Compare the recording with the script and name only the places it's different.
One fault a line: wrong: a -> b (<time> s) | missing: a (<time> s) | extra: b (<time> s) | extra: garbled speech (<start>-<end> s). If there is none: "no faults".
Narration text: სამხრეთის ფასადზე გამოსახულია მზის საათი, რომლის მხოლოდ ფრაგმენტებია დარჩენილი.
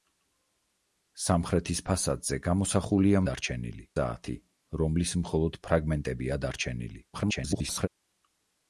wrong: მზის -> დარჩენილი (3.3 s)
extra: garbled speech (7.1-7.9 s)